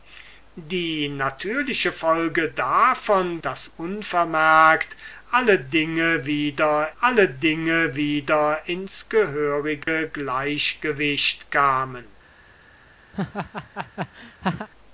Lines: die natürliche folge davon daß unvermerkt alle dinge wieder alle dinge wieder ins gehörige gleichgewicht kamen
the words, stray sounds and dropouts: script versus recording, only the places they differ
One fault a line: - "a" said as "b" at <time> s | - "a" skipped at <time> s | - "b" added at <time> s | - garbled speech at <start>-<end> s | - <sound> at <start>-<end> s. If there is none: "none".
- dropout at 9.8-9.9 s
- laugh at 13.1-14.7 s